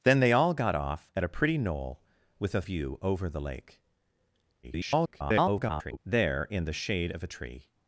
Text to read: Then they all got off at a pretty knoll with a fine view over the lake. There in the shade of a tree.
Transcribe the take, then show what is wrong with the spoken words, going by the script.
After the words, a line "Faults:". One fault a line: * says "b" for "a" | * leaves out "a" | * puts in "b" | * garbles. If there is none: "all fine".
Then they all got off at a pretty knoll with a view over the lake. [garbled] There in the shade of a tree.
Faults:
* leaves out "fine"
* garbles